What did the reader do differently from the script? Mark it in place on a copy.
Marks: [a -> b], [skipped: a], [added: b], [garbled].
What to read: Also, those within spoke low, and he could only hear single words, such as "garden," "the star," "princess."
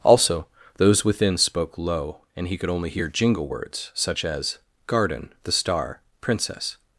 Also, those within spoke low, and he could only hear [single -> jingle] words, such as "garden," "the star," "princess."